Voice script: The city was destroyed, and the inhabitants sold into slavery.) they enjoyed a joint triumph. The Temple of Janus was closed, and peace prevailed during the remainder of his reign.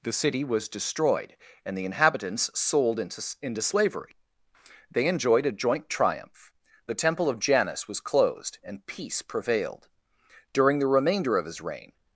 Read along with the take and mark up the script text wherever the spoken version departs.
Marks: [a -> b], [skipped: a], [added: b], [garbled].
The city was destroyed, and the inhabitants sold into [added: into] slavery.) they enjoyed a joint triumph. The Temple of Janus was closed, and peace prevailed during the remainder of his reign.